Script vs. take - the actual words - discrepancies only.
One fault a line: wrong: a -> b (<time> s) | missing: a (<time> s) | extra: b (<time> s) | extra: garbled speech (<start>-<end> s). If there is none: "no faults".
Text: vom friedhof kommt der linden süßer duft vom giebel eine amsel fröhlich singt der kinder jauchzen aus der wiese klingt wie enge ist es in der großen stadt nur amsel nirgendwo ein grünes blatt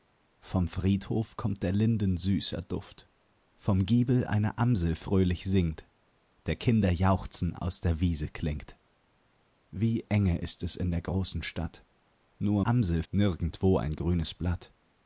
no faults